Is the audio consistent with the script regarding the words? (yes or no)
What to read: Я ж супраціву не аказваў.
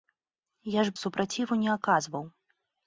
yes